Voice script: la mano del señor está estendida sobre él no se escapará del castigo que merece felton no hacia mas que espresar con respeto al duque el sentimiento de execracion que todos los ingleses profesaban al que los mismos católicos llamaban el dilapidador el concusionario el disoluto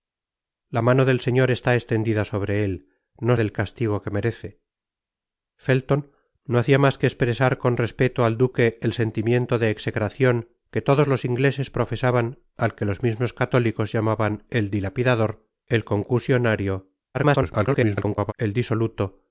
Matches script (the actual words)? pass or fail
fail